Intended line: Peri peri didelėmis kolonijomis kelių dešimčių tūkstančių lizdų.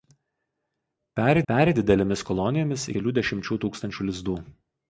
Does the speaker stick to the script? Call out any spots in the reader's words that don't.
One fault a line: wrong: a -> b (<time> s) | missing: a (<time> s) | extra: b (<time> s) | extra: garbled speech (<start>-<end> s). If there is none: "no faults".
no faults